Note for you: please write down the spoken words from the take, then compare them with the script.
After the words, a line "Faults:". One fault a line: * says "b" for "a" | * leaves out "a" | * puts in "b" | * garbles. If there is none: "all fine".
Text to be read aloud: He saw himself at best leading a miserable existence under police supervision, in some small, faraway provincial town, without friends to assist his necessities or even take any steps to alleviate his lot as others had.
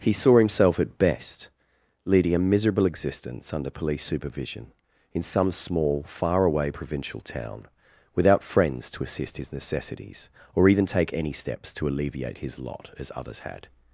He saw himself at best leading a miserable existence under police supervision, in some small, faraway provincial town, without friends to assist his necessities or even take any steps to alleviate his lot as others had.
Faults:
all fine